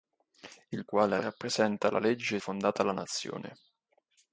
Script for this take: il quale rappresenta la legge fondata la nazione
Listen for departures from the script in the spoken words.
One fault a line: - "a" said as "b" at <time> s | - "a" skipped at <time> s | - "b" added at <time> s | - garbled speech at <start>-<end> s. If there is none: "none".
none